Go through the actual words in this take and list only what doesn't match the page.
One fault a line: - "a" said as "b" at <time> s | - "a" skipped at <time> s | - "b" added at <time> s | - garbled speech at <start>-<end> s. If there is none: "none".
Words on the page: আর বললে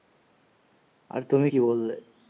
- "তুমি কী" added at 1.2 s